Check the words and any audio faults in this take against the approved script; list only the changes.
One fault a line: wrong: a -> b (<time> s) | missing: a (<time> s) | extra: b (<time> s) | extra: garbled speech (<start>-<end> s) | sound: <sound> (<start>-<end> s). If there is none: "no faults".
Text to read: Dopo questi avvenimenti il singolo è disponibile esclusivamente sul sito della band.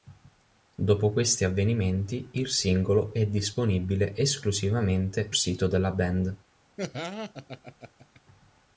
missing: sul (5.3 s)
sound: laugh (6.8-8.2 s)